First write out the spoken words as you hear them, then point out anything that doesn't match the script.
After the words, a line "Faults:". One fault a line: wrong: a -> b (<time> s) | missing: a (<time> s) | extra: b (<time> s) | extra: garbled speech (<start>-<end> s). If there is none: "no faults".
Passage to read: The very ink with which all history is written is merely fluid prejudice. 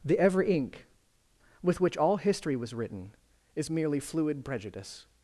The every ink with which all history was written is merely fluid prejudice.
Faults:
wrong: very -> every (0.2 s)
wrong: is -> was (2.6 s)